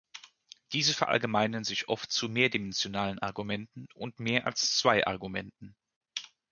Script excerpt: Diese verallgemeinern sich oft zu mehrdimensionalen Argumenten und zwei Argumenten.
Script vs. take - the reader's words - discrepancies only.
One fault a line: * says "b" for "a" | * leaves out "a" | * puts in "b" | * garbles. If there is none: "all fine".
* puts in "mehr als"